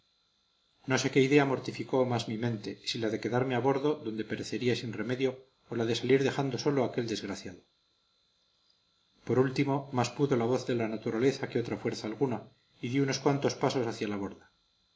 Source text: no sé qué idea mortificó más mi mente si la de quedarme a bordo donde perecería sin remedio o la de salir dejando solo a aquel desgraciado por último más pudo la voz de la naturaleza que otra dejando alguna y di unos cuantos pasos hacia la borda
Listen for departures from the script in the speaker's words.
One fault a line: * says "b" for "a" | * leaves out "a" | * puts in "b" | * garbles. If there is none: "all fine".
* says "fuerza" for "dejando"